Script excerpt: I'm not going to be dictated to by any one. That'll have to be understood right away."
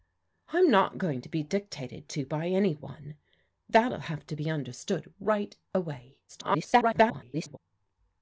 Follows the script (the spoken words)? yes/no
no